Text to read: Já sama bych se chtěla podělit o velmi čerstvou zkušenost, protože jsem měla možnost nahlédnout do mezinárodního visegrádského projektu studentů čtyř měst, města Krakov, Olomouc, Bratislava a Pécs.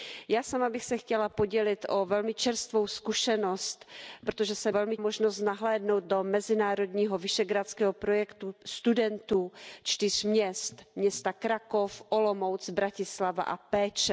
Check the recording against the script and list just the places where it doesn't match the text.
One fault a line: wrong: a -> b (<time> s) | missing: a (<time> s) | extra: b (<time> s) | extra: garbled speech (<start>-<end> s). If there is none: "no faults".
wrong: měla -> velmi (4.7 s)